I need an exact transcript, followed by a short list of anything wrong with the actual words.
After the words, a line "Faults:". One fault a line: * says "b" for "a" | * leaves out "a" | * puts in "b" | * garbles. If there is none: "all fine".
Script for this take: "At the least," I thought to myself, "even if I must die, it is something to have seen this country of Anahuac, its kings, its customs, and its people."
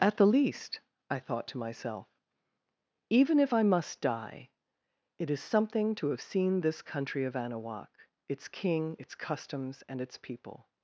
"At the least," I thought to myself, "even if I must die, it is something to have seen this country of Anahuac, its king, its customs, and its people."
Faults:
* says "king" for "kings"